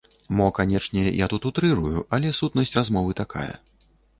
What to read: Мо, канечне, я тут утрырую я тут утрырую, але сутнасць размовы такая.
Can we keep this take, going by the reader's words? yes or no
no